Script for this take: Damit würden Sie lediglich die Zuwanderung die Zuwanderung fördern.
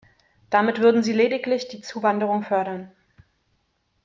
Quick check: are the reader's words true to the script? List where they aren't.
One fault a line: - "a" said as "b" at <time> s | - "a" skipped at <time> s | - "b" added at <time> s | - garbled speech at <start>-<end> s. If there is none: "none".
- "die Zuwanderung" skipped at 2.4 s